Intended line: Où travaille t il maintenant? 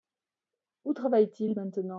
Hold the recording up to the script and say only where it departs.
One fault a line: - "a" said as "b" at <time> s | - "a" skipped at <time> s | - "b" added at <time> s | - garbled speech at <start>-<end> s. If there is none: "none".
none